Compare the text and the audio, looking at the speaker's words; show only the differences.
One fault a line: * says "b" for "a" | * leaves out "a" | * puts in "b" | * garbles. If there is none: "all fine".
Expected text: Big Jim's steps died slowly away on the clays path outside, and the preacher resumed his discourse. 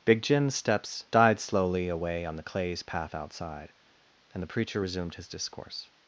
all fine